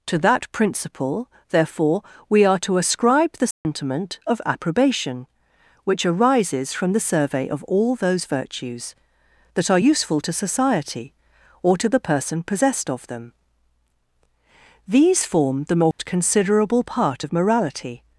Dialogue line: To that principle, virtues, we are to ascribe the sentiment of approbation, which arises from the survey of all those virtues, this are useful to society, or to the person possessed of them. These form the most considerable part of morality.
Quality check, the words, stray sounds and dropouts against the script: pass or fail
fail